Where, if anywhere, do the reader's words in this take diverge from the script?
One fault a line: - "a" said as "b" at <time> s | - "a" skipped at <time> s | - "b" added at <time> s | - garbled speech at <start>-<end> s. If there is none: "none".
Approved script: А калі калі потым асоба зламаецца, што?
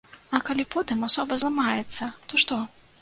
- "калі" skipped at 0.6 s
- "то" added at 2.3 s